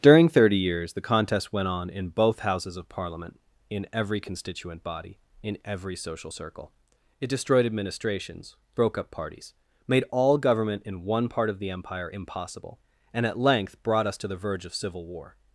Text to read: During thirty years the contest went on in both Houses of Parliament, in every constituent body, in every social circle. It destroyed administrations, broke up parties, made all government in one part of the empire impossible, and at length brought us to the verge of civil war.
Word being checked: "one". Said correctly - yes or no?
yes